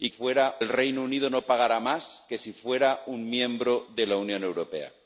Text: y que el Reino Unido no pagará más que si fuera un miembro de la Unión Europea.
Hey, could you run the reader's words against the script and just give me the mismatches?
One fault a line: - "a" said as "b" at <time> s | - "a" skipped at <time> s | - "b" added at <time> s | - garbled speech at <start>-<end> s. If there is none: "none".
- "que" said as "fuera" at 0.1 s